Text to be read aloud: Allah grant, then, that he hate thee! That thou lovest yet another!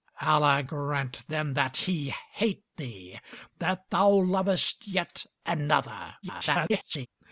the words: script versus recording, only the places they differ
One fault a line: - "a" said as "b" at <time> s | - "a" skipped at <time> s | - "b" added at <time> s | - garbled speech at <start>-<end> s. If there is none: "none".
- garbled speech at 6.2-7.1 s